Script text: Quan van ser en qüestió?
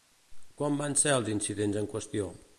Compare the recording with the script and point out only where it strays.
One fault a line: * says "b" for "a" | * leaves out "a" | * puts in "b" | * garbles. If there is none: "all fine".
* puts in "els incidents"